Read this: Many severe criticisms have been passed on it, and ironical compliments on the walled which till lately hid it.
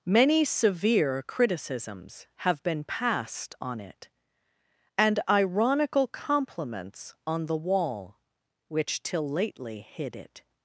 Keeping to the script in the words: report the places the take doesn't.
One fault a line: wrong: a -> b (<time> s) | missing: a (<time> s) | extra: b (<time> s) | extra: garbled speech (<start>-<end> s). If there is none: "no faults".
wrong: walled -> wall (7.6 s)